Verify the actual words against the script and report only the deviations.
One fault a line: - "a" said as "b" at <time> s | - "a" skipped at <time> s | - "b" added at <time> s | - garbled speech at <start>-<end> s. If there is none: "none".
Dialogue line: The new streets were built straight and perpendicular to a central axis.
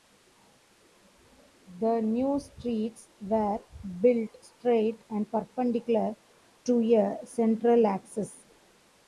none